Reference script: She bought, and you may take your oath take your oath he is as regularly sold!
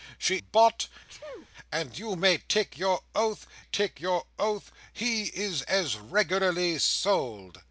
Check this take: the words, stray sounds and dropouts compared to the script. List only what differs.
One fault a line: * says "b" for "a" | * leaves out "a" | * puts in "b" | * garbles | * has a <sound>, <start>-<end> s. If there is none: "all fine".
* has a sneeze, 1.1-1.5 s